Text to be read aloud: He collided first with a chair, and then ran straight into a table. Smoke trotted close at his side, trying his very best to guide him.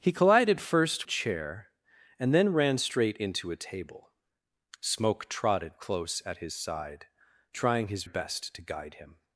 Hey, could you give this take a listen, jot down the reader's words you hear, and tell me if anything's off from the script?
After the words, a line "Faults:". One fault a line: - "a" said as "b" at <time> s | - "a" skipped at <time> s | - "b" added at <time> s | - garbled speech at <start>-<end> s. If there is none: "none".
He collided first a chair, and then ran straight into a table. Smoke trotted close at his side, trying his best to guide him.
Faults:
- "with" skipped at 1.1 s
- "very" skipped at 8.0 s